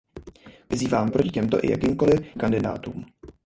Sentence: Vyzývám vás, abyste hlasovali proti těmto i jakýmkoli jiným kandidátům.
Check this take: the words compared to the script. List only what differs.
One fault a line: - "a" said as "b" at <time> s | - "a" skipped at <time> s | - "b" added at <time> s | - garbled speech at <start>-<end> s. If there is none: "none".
- "vás abyste hlasovali" skipped at 1.1 s
- "jiným" skipped at 2.3 s